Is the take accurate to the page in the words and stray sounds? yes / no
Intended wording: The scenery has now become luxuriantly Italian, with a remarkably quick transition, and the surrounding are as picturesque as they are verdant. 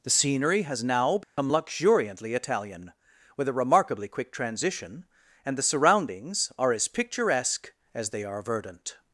no